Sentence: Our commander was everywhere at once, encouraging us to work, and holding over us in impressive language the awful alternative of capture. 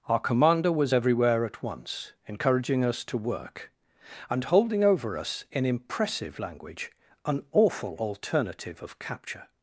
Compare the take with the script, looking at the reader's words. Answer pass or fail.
fail